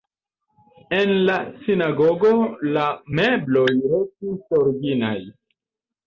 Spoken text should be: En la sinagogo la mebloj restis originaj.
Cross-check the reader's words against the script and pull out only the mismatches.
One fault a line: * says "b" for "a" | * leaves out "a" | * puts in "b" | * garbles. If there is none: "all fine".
all fine